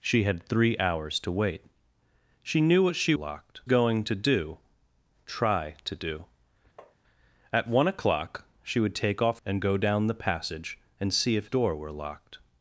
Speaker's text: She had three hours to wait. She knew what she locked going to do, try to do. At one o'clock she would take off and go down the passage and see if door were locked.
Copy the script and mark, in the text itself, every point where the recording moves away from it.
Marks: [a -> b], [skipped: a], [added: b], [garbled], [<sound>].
She had three hours to wait. She knew what she locked going to do, try to do. [tap] At one o'clock she would take off and go down the passage and see if door were locked.